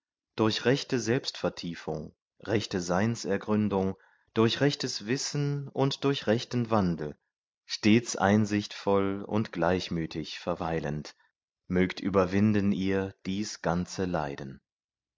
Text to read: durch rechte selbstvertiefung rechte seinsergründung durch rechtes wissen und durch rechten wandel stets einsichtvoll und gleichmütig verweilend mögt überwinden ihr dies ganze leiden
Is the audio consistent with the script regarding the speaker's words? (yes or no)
yes